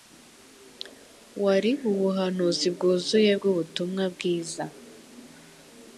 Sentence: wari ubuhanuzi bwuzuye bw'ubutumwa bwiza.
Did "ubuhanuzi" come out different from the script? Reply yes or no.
no